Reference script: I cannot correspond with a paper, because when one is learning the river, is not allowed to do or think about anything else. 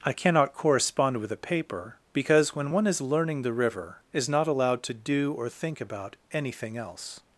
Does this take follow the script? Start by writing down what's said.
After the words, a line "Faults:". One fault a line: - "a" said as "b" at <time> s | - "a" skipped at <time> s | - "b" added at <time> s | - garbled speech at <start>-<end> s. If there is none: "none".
I cannot correspond with a paper, because when one is learning the river, is not allowed to do or think about anything else.
Faults:
none